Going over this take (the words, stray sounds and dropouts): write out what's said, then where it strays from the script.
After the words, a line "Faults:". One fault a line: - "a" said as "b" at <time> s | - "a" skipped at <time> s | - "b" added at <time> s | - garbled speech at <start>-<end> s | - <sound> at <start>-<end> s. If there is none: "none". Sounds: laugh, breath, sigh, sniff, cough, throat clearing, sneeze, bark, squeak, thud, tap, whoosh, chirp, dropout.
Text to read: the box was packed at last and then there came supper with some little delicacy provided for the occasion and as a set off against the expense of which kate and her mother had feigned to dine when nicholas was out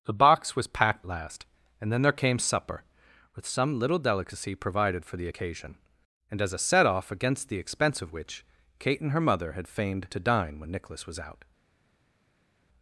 the box was packed last and then there came supper with some little delicacy provided for the occasion and as a set off against the expense of which kate and her mother had feigned to dine when nicholas was out
Faults:
- "at" skipped at 1.1 s